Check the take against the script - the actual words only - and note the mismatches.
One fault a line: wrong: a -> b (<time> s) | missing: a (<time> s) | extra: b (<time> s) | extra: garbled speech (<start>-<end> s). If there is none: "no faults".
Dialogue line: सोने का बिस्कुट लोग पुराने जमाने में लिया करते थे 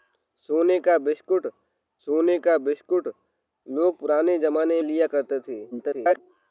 extra: सोने का बिस्कुट (2.1 s)
missing: में (4.8 s)
extra: garbled speech (5.7-6.2 s)